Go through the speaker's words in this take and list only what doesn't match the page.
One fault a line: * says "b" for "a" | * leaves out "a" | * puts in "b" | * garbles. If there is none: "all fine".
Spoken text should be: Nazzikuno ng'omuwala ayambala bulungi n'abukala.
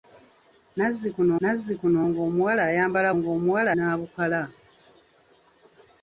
* puts in "nazzikuno"
* says "ng'omuwala" for "bulungi"